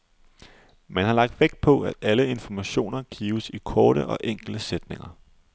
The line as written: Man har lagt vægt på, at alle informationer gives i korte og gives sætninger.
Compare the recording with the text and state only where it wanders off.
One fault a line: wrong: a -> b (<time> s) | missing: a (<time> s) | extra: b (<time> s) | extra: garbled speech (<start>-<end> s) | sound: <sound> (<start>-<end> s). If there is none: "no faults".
wrong: gives -> enkle (4.2 s)